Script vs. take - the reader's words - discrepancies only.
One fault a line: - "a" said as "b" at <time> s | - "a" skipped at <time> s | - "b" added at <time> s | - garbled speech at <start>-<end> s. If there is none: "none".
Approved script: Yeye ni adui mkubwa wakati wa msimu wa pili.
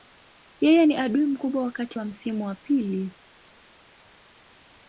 none